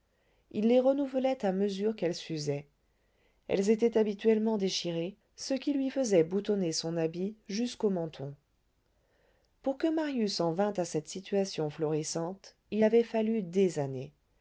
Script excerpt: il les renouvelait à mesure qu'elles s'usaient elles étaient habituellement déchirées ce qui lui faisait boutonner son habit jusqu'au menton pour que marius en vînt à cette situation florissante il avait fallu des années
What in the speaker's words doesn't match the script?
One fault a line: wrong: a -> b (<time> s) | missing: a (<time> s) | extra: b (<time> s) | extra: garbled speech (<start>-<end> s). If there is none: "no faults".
no faults